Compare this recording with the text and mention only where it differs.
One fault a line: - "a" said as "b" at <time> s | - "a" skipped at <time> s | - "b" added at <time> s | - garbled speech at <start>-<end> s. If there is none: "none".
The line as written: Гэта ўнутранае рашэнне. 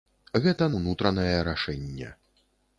none